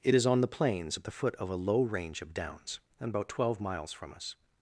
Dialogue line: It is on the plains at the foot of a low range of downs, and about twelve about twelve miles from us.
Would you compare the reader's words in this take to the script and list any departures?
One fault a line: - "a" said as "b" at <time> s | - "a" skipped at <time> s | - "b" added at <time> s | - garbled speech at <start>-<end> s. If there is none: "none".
- "about twelve" skipped at 3.6 s